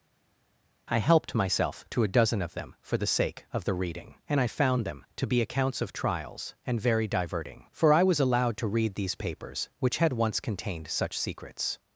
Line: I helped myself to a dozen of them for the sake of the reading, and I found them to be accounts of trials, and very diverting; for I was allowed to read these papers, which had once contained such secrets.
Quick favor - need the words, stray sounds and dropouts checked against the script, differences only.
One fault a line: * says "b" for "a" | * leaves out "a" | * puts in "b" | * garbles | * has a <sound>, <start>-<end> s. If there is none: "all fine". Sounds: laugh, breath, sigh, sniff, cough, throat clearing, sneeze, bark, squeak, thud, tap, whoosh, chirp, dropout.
all fine